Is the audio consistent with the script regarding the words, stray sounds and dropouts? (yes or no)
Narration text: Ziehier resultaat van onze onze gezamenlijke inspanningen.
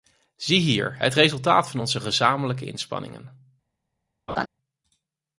no